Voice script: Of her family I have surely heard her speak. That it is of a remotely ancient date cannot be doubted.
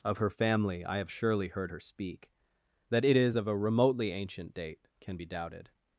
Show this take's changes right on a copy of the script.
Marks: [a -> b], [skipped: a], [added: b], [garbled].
Of her family I have surely heard her speak. That it is of a remotely ancient date [cannot -> can] be doubted.